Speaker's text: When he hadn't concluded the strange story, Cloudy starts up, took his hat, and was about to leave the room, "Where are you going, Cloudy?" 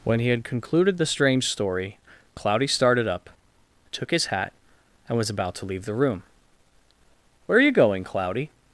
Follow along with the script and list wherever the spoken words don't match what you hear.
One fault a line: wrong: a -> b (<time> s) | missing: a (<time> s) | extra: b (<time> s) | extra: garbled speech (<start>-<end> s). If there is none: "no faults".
wrong: hadn't -> had (0.3 s)
wrong: starts -> started (2.7 s)